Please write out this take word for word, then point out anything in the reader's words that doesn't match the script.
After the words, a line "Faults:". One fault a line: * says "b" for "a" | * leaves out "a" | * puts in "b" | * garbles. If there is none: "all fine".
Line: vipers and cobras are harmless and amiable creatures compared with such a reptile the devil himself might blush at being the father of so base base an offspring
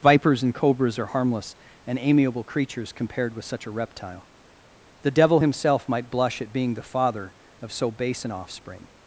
vipers and cobras are harmless and amiable creatures compared with such a reptile the devil himself might blush at being the father of so base an offspring
Faults:
* leaves out "base"